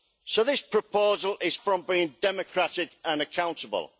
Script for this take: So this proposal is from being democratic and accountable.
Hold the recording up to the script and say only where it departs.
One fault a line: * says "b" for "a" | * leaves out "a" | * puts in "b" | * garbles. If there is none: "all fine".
all fine